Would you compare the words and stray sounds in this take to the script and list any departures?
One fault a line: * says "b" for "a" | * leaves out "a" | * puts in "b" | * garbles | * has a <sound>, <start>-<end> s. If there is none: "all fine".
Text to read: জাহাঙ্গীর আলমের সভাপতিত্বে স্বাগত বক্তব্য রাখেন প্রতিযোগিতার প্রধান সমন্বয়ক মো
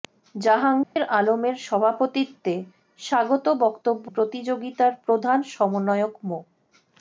* has a dropout, 0.8-1.0 s
* leaves out "রাখেন"